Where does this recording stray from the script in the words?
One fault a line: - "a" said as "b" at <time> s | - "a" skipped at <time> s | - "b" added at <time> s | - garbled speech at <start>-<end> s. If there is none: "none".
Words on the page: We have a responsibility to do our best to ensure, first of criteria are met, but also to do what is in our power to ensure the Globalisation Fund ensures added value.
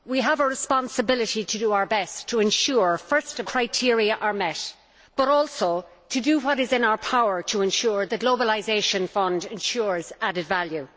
none